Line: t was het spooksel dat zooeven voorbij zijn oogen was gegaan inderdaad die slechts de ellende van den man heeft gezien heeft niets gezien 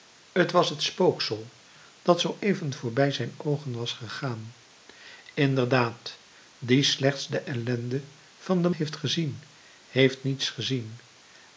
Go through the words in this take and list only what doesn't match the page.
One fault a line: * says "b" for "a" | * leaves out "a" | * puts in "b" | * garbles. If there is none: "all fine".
* leaves out "man"